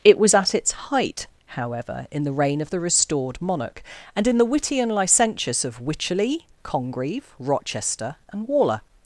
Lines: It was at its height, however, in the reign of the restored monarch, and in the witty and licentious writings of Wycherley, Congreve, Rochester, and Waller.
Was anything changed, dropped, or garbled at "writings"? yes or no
yes